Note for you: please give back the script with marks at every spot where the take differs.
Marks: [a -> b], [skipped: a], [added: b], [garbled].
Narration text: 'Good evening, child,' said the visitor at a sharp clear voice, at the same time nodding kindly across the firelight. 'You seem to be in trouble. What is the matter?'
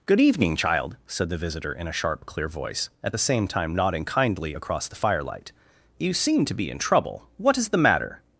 'Good evening, child,' said the visitor [at -> in] a sharp clear voice, at the same time nodding kindly across the firelight. 'You seem to be in trouble. What is the matter?'